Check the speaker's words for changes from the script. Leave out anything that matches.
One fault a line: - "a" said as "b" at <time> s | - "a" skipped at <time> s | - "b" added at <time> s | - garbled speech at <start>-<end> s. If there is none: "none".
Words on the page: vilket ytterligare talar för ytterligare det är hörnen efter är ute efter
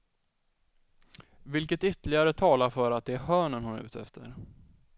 - "ytterligare" said as "att" at 2.9 s
- "efter" said as "hon" at 3.6 s